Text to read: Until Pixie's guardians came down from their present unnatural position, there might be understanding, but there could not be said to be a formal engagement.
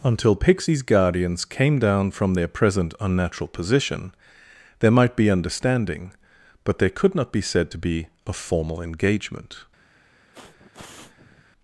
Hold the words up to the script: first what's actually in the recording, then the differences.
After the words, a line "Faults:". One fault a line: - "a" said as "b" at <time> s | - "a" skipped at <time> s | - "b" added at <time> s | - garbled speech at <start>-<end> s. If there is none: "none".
Until Pixie's guardians came down from their present unnatural position, there might be understanding, but there could not be said to be a formal engagement.
Faults:
none